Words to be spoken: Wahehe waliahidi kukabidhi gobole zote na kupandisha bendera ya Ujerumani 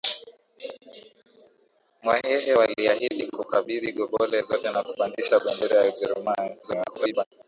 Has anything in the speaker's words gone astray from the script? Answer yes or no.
yes